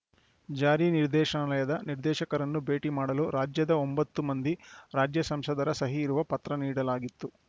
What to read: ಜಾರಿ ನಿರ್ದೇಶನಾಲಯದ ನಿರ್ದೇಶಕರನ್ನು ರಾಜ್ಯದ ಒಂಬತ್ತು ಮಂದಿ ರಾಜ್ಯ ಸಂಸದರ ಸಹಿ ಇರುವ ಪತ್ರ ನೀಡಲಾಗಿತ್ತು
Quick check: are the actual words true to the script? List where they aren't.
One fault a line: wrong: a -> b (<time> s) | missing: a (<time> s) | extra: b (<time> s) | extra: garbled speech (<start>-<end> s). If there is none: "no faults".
extra: ಭೇಟಿ ಮಾಡಲು (2.7 s)